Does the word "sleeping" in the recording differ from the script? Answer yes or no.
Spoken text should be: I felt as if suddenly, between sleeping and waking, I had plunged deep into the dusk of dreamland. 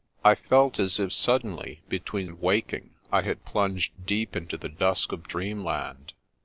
yes